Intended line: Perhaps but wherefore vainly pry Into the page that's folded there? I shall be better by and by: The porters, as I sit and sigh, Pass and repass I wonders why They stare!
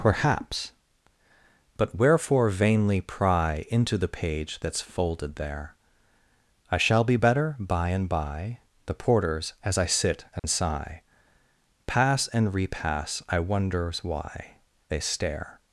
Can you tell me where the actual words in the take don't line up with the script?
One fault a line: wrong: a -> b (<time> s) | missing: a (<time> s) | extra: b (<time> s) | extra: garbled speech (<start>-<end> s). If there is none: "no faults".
no faults